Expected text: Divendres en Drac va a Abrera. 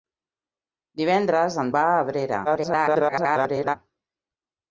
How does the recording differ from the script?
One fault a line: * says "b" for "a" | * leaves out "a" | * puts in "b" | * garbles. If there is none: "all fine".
* leaves out "Drac"
* garbles